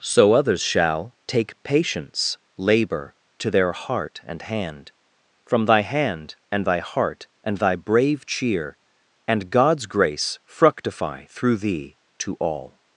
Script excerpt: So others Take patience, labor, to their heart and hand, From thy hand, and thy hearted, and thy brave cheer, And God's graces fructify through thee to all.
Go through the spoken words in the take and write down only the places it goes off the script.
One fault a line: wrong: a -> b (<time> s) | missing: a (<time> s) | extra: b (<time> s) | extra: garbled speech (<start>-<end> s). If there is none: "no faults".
extra: shall (0.6 s)
wrong: hearted -> heart (6.8 s)
wrong: graces -> grace (9.9 s)